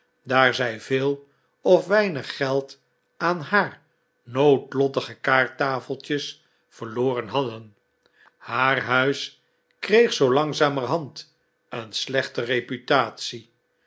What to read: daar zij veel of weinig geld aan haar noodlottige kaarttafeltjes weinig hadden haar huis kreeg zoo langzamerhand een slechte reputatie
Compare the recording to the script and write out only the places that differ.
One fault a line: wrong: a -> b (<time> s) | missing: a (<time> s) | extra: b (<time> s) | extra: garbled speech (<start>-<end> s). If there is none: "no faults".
wrong: weinig -> verloren (6.7 s)